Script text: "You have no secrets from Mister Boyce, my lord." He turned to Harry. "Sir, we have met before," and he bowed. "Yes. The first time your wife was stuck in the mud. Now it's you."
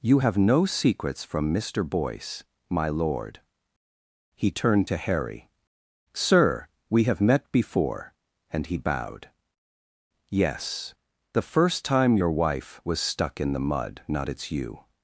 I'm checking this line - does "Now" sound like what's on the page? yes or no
no